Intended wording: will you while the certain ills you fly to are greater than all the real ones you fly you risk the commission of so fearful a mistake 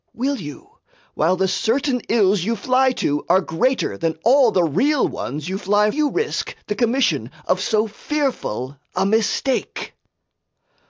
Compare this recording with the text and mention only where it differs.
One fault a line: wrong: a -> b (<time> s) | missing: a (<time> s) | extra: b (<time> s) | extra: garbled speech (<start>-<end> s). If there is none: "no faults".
no faults